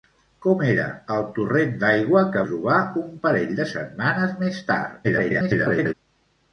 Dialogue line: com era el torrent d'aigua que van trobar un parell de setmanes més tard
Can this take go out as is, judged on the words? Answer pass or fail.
fail